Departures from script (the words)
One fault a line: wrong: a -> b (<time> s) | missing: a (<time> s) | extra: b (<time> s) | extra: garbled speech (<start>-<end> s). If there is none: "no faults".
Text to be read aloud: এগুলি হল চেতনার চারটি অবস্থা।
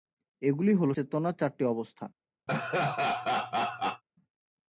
no faults